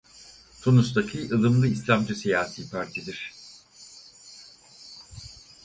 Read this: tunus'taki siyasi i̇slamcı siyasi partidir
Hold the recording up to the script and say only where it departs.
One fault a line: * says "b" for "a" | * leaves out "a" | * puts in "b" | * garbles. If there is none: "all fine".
* says "ılımlı" for "siyasi"